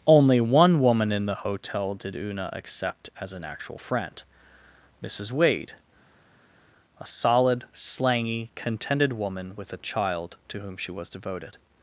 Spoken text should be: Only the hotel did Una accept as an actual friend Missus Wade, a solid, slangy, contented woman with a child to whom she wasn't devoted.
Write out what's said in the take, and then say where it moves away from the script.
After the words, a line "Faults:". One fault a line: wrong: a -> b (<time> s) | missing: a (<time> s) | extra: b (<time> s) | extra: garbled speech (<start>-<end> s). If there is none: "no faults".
Only one woman in the hotel did Una accept as an actual friend Missus Wade, a solid, slangy, contented woman with a child to whom she was devoted.
Faults:
extra: one woman in (0.4 s)
wrong: wasn't -> was (10.9 s)